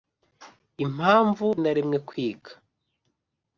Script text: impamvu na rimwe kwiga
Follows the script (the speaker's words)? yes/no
yes